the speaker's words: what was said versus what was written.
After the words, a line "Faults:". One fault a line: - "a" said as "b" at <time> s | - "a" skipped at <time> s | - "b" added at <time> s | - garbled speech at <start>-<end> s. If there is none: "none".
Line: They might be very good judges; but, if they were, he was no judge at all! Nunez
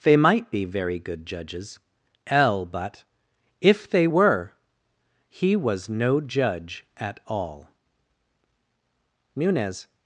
They might be very good judges; l but, if they were, he was no judge at all! Nunez
Faults:
- "l" added at 2.3 s